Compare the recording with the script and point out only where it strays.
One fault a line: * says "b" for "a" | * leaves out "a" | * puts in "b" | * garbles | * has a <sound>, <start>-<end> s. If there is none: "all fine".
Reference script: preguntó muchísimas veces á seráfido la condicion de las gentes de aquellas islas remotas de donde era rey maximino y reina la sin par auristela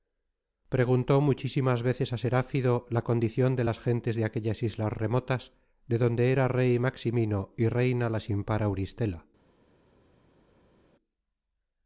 all fine